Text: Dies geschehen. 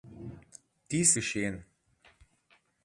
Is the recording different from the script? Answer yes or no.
no